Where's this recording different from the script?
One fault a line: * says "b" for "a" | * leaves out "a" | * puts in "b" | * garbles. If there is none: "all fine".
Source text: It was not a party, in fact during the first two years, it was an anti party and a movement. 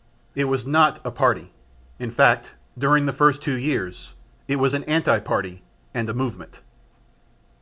all fine